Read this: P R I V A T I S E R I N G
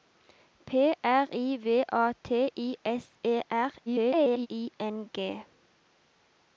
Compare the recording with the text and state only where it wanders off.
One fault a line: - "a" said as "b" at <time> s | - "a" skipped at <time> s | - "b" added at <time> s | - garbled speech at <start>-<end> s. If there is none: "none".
- garbled speech at 3.9-4.5 s